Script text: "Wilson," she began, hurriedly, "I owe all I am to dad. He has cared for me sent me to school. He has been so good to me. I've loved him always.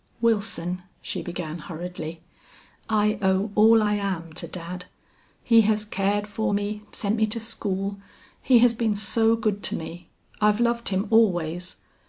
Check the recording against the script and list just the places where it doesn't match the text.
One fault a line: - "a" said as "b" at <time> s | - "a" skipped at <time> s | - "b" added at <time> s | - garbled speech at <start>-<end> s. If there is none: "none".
none